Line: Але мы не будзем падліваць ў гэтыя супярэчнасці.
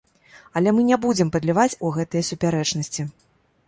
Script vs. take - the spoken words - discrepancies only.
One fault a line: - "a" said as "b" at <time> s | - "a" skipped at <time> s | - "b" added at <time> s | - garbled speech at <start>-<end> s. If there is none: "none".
none